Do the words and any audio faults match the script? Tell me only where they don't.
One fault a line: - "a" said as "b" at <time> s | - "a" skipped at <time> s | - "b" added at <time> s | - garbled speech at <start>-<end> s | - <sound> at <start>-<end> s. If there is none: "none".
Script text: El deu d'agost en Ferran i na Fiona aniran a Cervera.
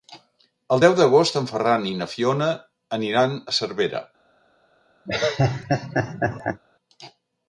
- laugh at 5.1-6.6 s